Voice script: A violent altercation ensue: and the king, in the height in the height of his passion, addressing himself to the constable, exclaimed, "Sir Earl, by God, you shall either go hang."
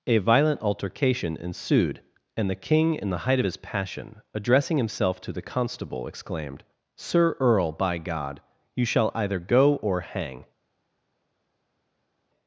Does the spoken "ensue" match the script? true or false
false